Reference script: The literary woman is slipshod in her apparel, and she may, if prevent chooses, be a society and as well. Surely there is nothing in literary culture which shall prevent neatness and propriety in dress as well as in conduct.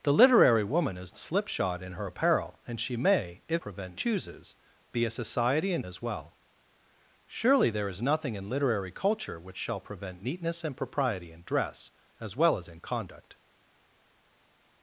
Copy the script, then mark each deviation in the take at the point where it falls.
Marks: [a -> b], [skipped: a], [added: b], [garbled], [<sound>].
The literary woman is slipshod in her apparel, and she may, if prevent chooses, be a society and as well. Surely there is nothing in literary culture which shall prevent neatness and propriety in dress as well as in conduct.